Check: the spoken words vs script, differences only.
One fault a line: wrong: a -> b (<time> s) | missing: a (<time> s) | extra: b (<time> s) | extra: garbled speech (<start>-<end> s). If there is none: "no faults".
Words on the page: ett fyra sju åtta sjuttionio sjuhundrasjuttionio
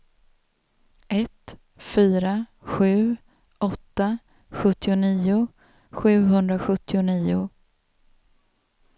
no faults